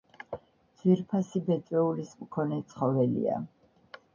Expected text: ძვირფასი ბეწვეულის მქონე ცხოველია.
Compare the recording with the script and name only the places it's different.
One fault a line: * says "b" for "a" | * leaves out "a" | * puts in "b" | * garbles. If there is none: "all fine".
all fine